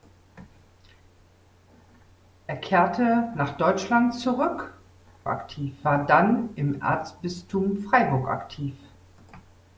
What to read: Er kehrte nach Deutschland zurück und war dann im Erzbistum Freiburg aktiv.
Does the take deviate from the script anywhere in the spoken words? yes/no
yes